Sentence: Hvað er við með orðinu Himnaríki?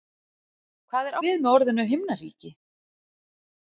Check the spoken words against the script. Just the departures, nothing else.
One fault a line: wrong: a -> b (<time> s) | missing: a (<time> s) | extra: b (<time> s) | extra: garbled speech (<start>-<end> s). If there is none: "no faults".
no faults